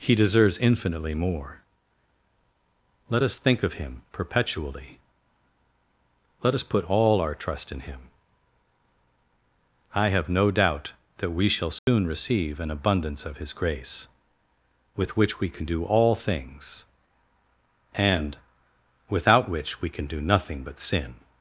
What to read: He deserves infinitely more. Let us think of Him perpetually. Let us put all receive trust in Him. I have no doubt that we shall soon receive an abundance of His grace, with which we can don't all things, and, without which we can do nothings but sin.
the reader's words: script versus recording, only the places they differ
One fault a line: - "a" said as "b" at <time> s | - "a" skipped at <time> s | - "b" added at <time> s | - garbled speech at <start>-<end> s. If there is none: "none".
- "receive" said as "our" at 7.2 s
- "don't" said as "do" at 15.6 s
- "nothings" said as "nothing" at 20.2 s